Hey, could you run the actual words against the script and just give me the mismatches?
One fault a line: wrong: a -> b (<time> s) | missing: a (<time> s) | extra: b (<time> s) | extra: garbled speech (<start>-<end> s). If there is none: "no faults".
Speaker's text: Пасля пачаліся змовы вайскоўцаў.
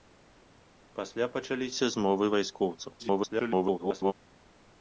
extra: garbled speech (3.0-4.1 s)